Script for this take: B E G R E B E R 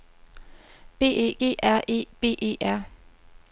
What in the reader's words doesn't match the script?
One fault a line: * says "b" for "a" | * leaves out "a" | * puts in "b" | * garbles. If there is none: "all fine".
all fine